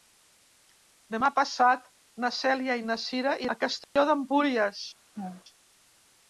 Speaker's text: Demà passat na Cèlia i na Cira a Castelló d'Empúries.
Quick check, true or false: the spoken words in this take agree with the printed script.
true